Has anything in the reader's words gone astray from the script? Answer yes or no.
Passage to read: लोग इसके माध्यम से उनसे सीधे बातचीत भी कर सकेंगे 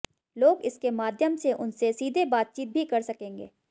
no